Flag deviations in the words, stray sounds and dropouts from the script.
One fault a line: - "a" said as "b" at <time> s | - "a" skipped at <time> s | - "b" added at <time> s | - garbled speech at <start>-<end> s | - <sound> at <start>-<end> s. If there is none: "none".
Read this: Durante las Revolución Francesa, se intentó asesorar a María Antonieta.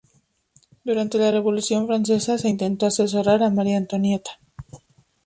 - "las" said as "la" at 1.2 s